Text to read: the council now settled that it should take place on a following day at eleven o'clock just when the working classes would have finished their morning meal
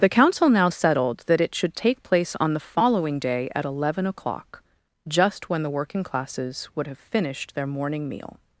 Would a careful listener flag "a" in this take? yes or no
yes